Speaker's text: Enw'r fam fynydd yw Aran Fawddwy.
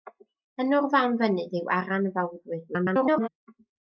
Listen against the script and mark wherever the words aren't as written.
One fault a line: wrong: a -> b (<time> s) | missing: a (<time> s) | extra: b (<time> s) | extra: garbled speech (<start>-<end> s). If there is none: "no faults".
extra: garbled speech (2.7-3.3 s)